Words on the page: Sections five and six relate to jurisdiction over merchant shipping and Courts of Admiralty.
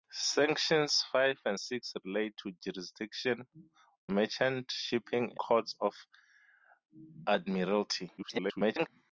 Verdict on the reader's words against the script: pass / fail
fail